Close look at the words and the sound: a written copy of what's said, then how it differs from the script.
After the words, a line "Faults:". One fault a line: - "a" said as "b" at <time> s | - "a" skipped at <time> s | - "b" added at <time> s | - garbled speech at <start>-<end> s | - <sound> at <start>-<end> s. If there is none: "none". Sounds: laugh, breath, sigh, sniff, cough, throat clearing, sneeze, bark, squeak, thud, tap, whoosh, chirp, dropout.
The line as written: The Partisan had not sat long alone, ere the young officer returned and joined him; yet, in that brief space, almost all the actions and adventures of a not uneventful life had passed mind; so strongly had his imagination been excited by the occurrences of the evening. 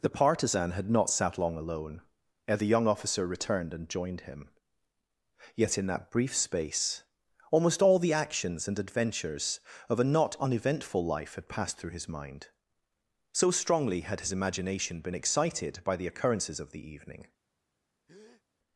The Partisan had not sat long alone, ere the young officer returned and joined him; yet, in that brief space, almost all the actions and adventures of a not uneventful life had passed through his mind; so strongly had his imagination been excited by the occurrences of the evening.
Faults:
- "through his" added at 11.8 s
- breath at 18.1-18.4 s